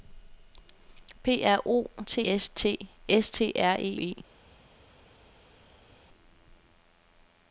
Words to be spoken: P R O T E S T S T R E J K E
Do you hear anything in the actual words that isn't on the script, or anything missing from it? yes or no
yes